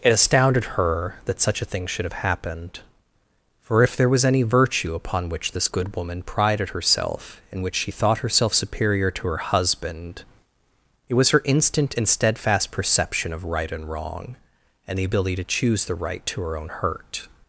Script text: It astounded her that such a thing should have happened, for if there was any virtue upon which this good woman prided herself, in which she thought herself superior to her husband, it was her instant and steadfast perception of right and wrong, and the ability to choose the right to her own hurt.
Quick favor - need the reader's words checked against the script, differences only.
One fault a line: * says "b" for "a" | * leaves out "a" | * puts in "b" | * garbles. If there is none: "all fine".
all fine